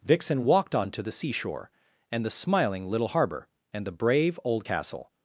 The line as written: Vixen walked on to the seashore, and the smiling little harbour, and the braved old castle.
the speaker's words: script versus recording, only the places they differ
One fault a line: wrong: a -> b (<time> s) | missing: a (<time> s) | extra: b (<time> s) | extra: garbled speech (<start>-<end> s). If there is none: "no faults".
wrong: braved -> brave (3.9 s)